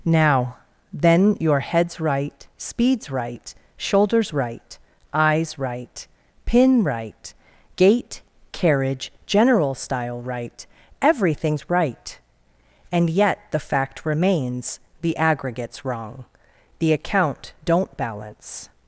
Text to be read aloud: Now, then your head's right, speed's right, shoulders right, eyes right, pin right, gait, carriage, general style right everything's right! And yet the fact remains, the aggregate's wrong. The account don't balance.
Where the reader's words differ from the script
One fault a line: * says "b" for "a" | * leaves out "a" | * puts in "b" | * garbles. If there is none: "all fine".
all fine